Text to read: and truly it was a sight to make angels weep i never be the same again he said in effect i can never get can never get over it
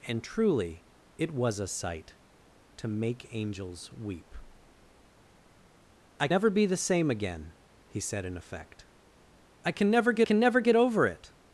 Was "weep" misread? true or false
false